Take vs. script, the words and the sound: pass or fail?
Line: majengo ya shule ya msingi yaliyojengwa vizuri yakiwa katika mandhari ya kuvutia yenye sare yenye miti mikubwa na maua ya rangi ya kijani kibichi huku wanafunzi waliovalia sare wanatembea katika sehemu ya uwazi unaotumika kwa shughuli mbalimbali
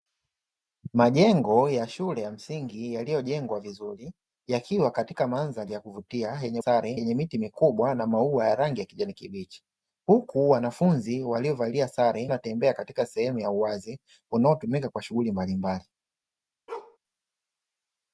fail